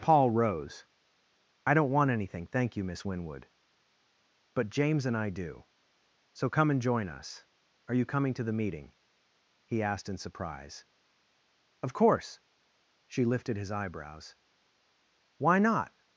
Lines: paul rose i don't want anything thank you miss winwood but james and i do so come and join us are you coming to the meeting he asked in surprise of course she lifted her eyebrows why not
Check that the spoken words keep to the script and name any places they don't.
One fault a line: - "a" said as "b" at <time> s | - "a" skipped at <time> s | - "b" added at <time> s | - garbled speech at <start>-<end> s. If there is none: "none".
- "her" said as "his" at 13.6 s